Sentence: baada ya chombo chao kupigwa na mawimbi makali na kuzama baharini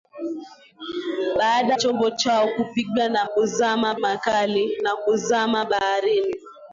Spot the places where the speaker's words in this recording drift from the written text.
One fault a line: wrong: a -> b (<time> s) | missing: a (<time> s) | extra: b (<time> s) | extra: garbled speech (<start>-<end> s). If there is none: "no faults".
missing: ya (1.8 s)
wrong: mawimbi -> kuzama (3.2 s)